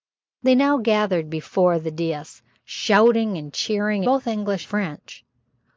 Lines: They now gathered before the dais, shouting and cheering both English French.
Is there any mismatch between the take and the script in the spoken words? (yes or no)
no